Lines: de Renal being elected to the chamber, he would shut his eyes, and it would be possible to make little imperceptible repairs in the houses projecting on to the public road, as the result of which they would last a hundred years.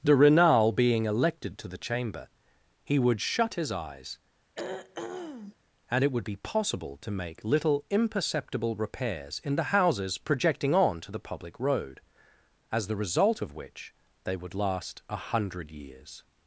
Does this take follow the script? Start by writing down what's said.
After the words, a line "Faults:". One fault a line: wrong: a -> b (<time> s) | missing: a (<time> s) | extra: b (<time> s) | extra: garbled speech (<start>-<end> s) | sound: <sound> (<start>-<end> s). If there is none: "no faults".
de Renal being elected to the chamber, he would shut his eyes, and it would be possible to make little imperceptible repairs in the houses projecting on to the public road, as the result of which they would last a hundred years.
Faults:
sound: throat clearing (4.5-5.6 s)